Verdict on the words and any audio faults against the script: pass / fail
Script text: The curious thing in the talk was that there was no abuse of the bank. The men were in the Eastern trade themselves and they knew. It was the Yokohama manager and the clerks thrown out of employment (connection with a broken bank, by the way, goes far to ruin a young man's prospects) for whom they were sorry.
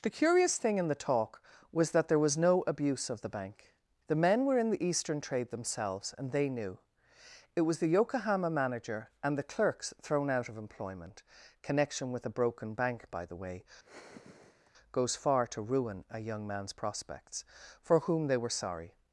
fail